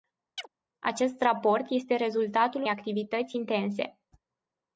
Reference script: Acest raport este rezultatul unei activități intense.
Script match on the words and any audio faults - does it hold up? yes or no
no